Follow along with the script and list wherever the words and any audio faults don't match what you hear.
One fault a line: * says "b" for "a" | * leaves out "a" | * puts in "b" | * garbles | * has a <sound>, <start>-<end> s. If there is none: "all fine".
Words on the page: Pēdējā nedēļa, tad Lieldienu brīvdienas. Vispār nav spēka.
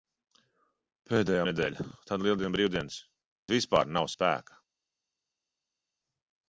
all fine